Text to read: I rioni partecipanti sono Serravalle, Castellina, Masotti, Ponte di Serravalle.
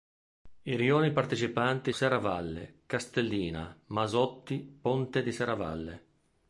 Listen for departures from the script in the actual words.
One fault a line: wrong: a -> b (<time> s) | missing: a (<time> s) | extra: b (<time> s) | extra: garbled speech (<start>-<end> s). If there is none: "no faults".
missing: sono (1.9 s)